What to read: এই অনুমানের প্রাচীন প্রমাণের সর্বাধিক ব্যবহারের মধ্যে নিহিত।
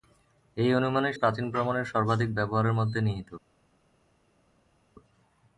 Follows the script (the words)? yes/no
yes